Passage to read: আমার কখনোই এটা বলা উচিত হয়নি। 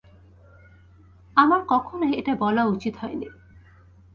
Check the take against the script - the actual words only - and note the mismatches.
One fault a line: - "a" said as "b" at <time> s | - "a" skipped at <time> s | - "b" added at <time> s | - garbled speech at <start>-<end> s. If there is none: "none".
none